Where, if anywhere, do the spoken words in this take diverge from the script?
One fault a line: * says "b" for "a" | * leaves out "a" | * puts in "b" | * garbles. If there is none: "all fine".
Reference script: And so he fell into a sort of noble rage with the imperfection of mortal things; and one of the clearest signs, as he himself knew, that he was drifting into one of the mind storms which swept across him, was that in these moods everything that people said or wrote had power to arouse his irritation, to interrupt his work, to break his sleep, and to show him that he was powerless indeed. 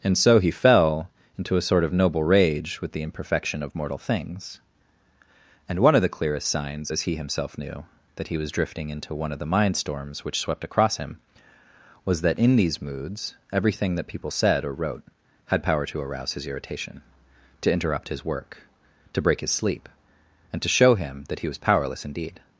all fine